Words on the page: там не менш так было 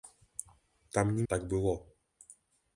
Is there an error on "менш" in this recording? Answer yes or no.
yes